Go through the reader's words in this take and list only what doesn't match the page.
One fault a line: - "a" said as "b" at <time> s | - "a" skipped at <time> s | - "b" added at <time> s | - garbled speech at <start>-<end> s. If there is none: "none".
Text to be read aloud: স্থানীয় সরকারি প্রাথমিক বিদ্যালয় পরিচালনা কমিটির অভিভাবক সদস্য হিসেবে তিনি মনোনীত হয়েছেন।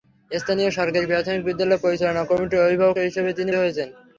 - "সদস্য" skipped at 3.0 s
- "মনোনীত" skipped at 3.5 s